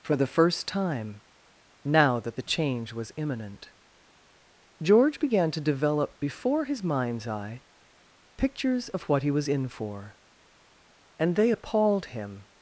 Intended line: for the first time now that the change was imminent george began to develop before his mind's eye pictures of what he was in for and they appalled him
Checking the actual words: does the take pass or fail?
pass